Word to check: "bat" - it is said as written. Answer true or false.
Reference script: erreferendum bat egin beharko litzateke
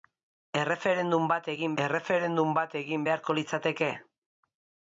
true